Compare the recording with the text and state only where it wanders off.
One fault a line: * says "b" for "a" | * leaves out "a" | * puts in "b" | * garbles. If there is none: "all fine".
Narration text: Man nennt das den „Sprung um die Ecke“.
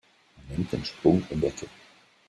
* leaves out "das"
* leaves out "die"